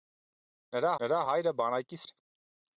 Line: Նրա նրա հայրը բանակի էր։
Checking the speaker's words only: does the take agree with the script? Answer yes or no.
yes